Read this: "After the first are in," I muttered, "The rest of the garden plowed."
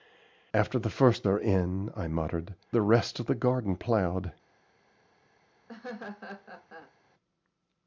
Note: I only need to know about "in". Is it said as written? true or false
true